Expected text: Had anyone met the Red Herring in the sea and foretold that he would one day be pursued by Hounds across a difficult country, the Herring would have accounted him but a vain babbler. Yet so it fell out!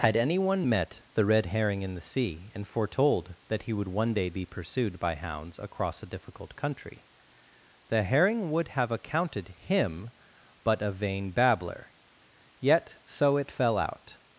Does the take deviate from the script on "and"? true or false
false